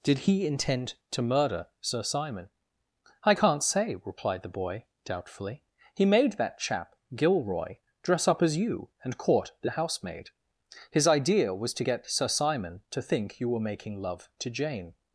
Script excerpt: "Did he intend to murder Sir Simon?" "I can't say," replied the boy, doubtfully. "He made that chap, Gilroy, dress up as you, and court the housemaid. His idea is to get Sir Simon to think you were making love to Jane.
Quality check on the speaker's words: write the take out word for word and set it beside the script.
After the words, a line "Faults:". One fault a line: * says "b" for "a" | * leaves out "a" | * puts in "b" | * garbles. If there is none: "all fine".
"Did he intend to murder Sir Simon?" "I can't say," replied the boy, doubtfully. "He made that chap, Gilroy, dress up as you, and court the housemaid. His idea was to get Sir Simon to think you were making love to Jane.
Faults:
* says "was" for "is"